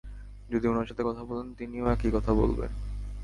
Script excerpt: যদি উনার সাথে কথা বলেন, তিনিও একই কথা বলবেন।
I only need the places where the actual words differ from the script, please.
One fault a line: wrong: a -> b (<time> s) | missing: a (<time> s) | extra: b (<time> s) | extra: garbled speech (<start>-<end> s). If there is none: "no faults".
no faults